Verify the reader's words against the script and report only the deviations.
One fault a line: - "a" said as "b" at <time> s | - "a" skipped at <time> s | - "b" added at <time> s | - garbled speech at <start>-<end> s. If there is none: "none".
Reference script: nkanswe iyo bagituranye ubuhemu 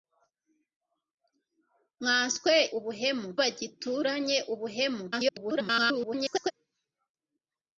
- "iyo" said as "ubuhemu" at 2.8 s
- garbled speech at 5.1-6.5 s